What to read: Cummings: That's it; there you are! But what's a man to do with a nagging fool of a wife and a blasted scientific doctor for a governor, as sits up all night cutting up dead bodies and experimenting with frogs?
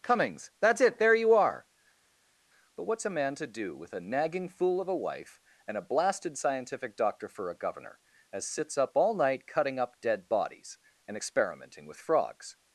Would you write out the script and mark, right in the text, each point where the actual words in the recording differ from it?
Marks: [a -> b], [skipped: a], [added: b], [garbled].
Cummings: That's it; there you are! But what's a man to do with a nagging fool of a wife and a blasted scientific doctor for a governor, as sits up all night cutting up dead bodies and experimenting with frogs?